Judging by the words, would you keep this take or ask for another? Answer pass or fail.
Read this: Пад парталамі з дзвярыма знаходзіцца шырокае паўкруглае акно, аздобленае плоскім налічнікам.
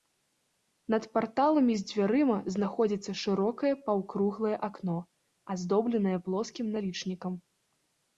fail